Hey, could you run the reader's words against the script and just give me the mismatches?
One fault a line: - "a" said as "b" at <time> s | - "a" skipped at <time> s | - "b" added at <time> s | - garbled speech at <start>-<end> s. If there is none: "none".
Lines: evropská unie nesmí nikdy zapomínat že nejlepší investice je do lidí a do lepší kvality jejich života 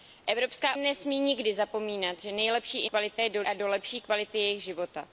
- "unie" skipped at 0.8 s
- "investice" said as "kvality" at 2.9 s
- "lidí" skipped at 3.4 s